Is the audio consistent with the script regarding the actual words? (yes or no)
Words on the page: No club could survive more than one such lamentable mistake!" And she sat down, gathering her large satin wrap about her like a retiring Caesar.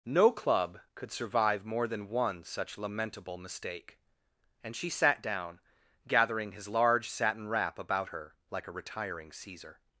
no